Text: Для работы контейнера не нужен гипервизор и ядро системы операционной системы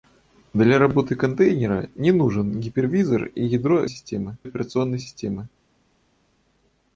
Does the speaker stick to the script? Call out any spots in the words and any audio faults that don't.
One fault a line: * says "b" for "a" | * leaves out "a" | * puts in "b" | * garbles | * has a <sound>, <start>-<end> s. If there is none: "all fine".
all fine